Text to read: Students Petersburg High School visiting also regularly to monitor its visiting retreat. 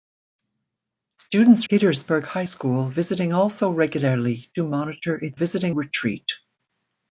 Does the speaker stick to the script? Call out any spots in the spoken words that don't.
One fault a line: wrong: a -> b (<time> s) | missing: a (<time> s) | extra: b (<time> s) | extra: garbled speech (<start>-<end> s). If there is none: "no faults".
no faults